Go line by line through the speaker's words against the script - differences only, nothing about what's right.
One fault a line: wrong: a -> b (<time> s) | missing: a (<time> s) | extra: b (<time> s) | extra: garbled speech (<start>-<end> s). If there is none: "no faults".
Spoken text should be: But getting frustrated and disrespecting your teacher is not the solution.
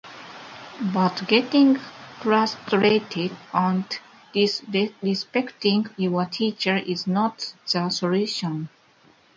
no faults